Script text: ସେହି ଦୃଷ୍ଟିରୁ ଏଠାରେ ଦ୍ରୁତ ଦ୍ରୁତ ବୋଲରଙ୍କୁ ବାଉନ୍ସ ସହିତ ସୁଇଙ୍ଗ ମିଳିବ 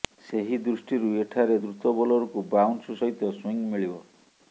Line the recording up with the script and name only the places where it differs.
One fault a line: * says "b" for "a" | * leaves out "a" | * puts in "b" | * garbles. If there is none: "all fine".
* leaves out "ଦ୍ରୁତ"